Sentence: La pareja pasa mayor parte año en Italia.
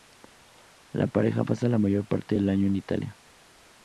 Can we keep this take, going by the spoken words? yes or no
no